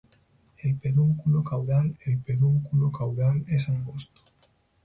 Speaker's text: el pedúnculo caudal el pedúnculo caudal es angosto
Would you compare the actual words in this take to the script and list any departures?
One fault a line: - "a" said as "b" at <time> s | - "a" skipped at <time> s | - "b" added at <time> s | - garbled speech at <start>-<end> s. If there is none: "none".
none